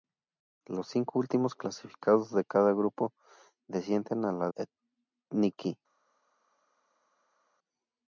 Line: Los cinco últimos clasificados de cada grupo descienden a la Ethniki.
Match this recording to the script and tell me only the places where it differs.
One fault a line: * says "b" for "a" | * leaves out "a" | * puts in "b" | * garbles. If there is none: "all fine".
all fine